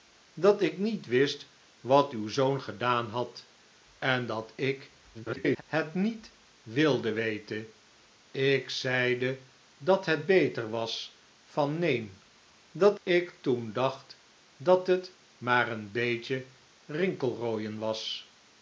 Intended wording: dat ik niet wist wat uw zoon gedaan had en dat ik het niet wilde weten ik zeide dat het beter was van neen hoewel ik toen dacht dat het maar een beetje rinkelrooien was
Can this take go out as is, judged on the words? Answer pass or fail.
fail